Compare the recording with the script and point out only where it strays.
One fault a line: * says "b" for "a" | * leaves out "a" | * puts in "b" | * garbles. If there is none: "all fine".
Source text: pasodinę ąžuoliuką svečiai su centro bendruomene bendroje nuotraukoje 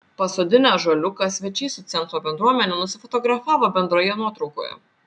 * puts in "nusifotografavo"